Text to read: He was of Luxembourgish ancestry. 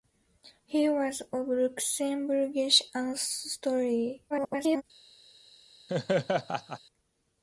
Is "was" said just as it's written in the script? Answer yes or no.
yes